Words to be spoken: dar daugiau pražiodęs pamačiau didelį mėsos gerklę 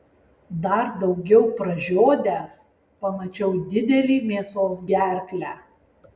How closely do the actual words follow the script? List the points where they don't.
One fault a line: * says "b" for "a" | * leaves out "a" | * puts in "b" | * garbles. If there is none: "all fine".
all fine